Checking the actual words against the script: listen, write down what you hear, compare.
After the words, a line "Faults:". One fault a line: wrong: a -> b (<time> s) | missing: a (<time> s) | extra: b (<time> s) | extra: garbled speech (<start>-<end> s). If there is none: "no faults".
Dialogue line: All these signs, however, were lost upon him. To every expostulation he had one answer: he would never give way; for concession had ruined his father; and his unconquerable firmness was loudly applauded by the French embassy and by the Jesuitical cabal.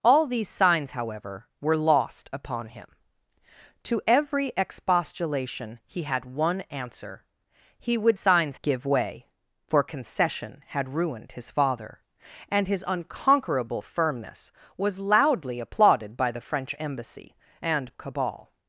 All these signs, however, were lost upon him. To every expostulation he had one answer: he would signs give way; for concession had ruined his father; and his unconquerable firmness was loudly applauded by the French embassy and cabal.
Faults:
wrong: never -> signs (8.1 s)
missing: by the Jesuitical (17.9 s)